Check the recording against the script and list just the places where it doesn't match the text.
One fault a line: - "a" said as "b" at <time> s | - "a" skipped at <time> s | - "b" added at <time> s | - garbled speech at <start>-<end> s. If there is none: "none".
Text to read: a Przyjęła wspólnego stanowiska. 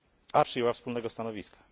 none